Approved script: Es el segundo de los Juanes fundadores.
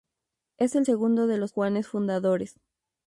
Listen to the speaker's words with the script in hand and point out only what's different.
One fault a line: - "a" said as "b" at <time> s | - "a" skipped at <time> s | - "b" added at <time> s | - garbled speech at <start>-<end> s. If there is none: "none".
none